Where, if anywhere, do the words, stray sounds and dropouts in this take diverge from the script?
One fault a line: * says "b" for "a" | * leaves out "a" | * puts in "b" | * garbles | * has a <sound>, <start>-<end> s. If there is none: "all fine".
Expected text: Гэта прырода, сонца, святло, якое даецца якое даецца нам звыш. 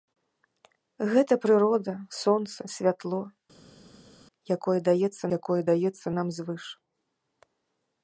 all fine